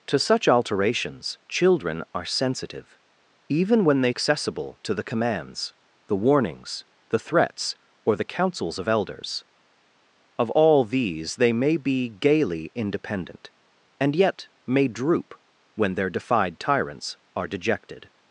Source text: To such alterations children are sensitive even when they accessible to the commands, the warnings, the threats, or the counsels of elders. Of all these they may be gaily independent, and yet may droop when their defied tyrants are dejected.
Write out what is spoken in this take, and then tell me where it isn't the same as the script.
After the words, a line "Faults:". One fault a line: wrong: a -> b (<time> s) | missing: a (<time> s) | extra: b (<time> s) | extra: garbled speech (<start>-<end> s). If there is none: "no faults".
To such alterations children are sensitive even when they accessible to the commands, the warnings, the threats, or the counsels of elders. Of all these they may be gaily independent, and yet may droop when their defied tyrants are dejected.
Faults:
no faults